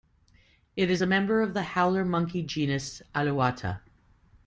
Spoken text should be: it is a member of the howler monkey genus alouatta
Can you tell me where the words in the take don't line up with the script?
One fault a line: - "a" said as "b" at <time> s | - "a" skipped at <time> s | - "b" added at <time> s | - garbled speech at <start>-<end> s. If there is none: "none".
none